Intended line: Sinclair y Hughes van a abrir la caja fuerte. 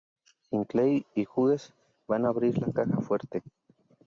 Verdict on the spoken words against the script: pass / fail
pass